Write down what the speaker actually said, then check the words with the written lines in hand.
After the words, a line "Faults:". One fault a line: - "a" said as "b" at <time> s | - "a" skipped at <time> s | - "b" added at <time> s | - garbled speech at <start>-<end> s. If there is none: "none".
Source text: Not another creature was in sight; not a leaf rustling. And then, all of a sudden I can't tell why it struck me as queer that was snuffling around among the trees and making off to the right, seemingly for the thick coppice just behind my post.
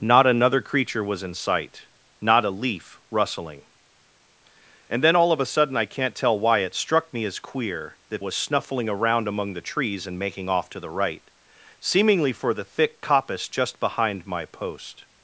Not another creature was in sight; not a leaf rustling. And then, all of a sudden I can't tell why it struck me as queer that was snuffling around among the trees and making off to the right, seemingly for the thick coppice just behind my post.
Faults:
none